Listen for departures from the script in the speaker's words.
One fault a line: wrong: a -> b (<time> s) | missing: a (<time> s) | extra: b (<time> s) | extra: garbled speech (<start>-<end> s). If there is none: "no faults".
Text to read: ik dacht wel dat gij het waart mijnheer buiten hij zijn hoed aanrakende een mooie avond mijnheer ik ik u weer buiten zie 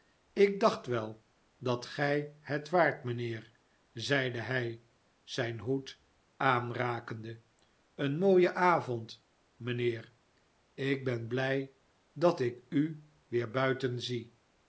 wrong: buiten -> zeide (3.9 s)
extra: ben blij dat (11.0 s)